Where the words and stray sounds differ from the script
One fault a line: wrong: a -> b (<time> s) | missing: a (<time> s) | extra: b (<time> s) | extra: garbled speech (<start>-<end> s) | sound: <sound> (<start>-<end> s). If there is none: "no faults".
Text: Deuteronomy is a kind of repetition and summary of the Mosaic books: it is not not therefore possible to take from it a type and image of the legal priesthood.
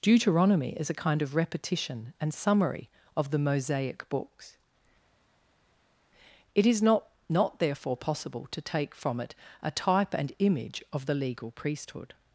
no faults